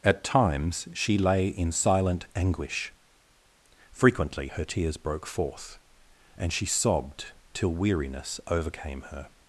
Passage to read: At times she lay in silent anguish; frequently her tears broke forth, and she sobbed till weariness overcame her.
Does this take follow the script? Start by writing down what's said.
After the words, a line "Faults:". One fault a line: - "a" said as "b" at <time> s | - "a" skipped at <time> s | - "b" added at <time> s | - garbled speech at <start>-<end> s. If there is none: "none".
At times she lay in silent anguish; frequently her tears broke forth, and she sobbed till weariness overcame her.
Faults:
none